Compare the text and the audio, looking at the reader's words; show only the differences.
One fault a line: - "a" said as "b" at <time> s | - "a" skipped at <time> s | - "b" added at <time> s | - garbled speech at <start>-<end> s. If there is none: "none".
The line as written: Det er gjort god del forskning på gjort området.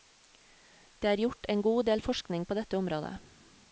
- "en" added at 1.5 s
- "gjort" said as "dette" at 2.6 s